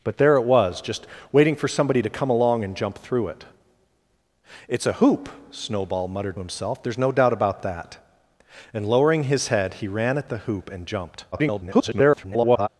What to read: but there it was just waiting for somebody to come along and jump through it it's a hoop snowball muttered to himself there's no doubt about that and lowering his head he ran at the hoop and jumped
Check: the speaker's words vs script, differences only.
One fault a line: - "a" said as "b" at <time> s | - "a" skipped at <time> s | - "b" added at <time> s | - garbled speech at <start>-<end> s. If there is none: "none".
- "to" skipped at 6.4 s
- garbled speech at 11.3-12.7 s